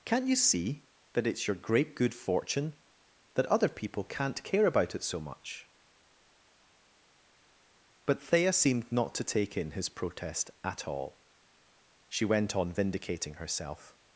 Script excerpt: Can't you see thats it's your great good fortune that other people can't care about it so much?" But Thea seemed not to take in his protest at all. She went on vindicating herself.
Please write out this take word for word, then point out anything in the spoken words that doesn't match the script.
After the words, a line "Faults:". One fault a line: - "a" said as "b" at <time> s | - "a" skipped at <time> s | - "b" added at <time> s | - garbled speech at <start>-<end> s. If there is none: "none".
Can't you see that it's your great good fortune that other people can't care about it so much?" But Thea seemed not to take in his protest at all. She went on vindicating herself.
Faults:
- "thats" said as "that" at 1.1 s